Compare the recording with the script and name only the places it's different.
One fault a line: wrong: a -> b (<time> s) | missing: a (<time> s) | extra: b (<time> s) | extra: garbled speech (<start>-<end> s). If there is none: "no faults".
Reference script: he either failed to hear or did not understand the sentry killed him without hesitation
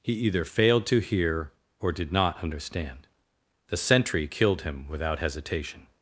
no faults